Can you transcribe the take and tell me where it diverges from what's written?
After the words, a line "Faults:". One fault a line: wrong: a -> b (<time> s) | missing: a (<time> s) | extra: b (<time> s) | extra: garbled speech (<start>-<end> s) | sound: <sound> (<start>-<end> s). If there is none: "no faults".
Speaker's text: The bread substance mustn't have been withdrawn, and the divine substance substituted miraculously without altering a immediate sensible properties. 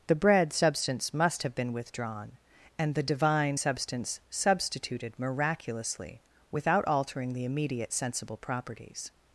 The bread substance must have been withdrawn, and the divine substance substituted miraculously without altering the immediate sensible properties.
Faults:
wrong: mustn't -> must (1.1 s)
wrong: a -> the (7.3 s)